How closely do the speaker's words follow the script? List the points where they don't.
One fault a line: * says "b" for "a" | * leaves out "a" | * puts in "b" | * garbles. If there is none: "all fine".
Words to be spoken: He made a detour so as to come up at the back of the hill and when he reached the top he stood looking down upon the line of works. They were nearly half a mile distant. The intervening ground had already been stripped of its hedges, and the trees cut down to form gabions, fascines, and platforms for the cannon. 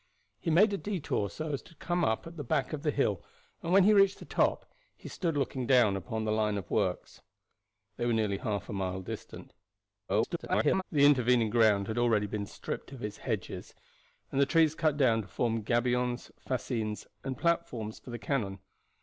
* garbles